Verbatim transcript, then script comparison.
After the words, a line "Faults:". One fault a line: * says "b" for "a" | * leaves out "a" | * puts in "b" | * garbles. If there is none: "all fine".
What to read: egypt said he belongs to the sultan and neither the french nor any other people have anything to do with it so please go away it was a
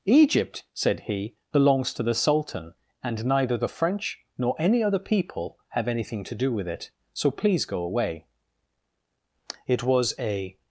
egypt said he belongs to the sultan and neither the french nor any other people have anything to do with it so please go away it was a
Faults:
all fine